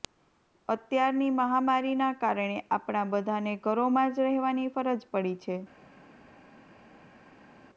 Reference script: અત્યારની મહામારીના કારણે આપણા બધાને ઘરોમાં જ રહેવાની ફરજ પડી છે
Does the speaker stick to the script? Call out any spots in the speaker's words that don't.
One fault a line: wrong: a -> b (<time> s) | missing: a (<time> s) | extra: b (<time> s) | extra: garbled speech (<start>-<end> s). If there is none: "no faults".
no faults